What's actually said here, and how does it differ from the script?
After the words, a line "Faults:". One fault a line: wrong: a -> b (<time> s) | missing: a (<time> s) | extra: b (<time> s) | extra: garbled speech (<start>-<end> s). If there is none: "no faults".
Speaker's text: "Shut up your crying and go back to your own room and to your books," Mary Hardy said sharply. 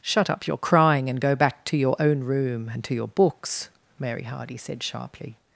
"Shut up your crying and go back to your own room and to your books," Mary Hardy said sharply.
Faults:
no faults